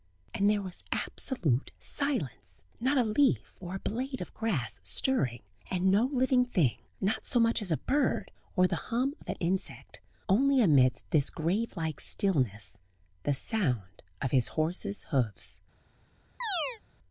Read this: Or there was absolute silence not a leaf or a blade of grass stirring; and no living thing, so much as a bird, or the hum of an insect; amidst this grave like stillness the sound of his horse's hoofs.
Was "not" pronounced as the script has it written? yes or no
yes